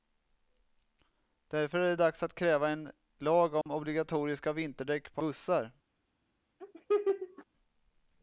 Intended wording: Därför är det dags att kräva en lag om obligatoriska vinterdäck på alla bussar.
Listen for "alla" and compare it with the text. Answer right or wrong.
wrong